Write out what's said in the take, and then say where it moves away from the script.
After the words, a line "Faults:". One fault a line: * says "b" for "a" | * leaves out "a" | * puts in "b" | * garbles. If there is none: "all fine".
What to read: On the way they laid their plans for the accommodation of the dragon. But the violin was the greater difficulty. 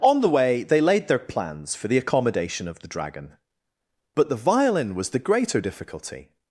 On the way they laid their plans for the accommodation of the dragon. But the violin was the greater difficulty.
Faults:
all fine